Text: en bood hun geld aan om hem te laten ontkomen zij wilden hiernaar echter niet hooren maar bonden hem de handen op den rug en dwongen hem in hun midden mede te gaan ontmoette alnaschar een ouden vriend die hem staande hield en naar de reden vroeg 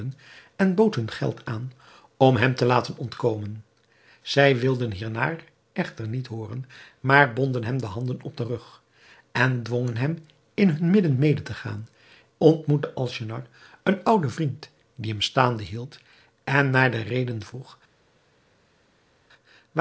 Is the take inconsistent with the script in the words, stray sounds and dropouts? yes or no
no